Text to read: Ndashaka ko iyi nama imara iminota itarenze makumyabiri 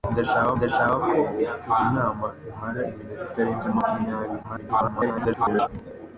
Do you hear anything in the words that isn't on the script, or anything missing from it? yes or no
yes